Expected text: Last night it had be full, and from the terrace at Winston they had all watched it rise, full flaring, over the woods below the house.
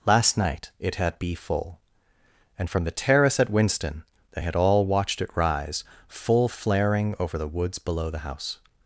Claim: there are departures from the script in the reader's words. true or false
false